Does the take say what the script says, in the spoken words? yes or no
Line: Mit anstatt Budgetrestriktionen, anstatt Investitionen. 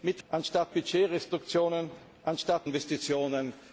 yes